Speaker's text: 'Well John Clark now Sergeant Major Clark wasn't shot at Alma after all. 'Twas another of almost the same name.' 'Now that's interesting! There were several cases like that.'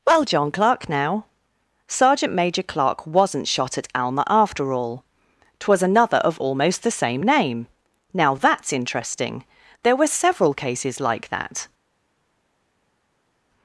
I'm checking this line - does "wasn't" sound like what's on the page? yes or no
yes